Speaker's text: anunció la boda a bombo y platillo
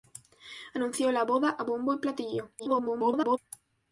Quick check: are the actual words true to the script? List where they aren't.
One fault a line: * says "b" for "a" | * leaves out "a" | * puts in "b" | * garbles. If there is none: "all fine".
* garbles